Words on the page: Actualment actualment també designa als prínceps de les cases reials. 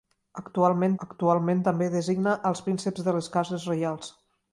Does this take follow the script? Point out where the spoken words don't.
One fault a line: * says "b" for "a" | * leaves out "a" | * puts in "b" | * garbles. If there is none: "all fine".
all fine